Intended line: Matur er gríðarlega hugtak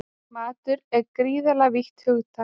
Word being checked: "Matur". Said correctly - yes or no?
yes